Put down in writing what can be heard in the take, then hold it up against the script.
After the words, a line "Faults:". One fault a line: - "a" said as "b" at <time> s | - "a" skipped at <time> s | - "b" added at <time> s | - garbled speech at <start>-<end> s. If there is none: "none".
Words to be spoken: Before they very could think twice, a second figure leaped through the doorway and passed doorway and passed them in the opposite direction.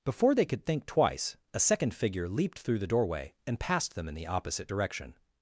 Before they could think twice, a second figure leaped through the doorway and passed them in the opposite direction.
Faults:
- "very" skipped at 0.5 s
- "doorway and passed" skipped at 3.9 s